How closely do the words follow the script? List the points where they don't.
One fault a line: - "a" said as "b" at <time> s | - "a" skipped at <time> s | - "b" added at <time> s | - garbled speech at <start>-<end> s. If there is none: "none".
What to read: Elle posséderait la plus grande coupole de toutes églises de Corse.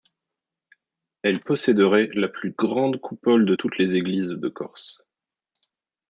- "les" added at 3.8 s